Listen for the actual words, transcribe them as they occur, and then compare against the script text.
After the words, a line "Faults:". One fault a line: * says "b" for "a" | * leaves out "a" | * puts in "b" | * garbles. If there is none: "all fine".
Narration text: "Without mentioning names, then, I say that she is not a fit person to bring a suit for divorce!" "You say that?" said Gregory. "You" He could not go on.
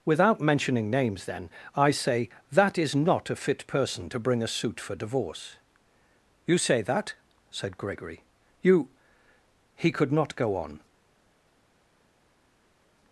"Without mentioning names, then, I say that is not a fit person to bring a suit for divorce!" "You say that?" said Gregory. "You" He could not go on.
Faults:
* leaves out "she"